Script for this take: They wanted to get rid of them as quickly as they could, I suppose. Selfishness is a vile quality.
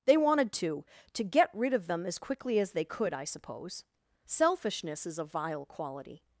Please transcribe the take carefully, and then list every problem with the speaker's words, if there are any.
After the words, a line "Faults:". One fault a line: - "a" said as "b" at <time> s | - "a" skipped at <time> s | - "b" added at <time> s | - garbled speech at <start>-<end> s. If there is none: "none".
They wanted to to get rid of them as quickly as they could, I suppose. Selfishness is a vile quality.
Faults:
- "to" added at 1.1 s